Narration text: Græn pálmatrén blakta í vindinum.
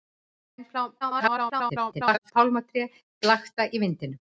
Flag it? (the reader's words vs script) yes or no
yes